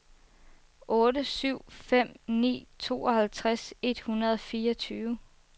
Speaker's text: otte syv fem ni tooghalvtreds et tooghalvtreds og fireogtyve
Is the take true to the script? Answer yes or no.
no